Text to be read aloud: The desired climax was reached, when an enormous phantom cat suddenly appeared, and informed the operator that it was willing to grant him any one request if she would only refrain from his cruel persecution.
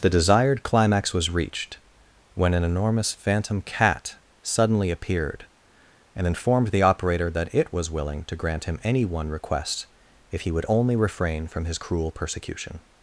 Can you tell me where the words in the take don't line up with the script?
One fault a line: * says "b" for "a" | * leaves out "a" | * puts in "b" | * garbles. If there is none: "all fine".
* says "he" for "she"